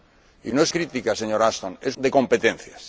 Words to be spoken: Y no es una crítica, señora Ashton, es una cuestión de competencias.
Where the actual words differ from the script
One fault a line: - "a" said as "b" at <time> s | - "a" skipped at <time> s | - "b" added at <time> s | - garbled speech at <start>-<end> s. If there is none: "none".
- "una" skipped at 0.7 s
- "una cuestión" skipped at 2.0 s